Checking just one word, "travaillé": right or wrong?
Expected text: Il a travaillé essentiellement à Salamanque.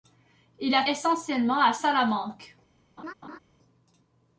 wrong